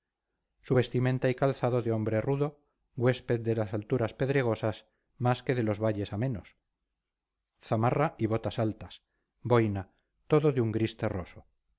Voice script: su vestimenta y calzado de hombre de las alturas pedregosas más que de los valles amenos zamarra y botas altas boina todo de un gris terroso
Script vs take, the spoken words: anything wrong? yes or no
yes